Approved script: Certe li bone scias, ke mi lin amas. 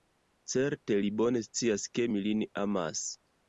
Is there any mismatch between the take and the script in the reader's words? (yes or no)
no